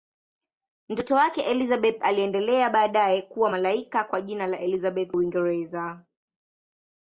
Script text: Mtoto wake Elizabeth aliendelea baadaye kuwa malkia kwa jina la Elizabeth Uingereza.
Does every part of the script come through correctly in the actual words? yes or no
yes